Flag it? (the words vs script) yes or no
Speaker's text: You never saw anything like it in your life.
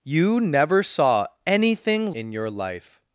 yes